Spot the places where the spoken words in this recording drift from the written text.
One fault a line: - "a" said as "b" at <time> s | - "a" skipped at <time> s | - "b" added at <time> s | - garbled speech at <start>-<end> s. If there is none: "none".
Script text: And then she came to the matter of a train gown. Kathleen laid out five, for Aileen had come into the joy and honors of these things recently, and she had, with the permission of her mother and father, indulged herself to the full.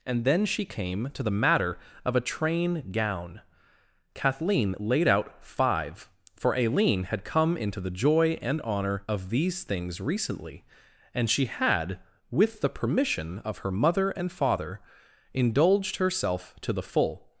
- "honors" said as "honor" at 8.6 s